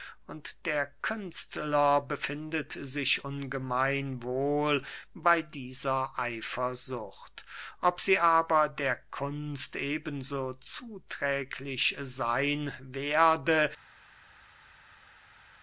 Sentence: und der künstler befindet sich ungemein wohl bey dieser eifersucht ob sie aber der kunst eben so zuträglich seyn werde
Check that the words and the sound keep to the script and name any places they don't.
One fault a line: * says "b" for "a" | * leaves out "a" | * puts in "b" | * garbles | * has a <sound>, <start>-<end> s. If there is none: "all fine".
all fine